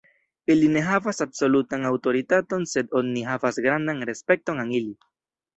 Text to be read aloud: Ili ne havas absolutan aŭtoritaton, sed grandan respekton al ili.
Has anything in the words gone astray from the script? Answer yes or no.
yes